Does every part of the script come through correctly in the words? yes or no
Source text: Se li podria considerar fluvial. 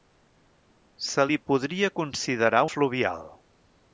yes